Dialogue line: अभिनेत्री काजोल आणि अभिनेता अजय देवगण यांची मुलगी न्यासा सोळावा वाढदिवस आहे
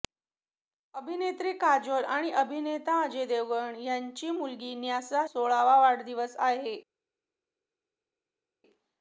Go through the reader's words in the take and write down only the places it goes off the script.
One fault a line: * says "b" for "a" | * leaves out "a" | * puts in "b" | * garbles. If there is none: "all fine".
all fine